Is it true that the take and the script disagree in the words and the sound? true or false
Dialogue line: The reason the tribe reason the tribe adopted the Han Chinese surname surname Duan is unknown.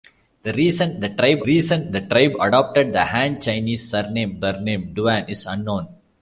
false